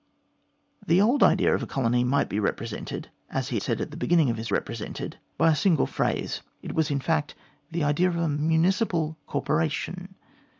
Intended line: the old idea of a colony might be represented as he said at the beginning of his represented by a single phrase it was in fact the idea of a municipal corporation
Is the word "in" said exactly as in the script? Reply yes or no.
yes